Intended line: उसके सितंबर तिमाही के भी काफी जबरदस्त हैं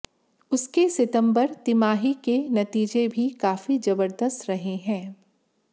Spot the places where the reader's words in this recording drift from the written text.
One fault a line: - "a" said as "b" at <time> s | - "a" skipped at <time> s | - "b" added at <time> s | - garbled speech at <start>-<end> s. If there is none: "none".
- "नतीजे" added at 2.5 s
- "रहे" added at 4.5 s